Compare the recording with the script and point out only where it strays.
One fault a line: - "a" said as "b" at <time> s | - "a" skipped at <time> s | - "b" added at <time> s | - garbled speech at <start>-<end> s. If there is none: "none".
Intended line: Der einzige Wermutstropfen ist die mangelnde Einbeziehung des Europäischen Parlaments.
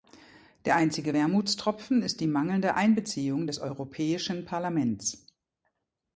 none